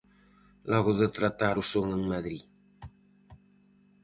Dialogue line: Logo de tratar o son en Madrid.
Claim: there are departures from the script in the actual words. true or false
false